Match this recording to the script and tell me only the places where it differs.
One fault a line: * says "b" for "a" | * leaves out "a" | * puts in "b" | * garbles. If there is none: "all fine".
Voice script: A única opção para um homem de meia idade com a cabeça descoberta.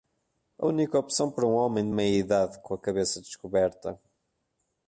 all fine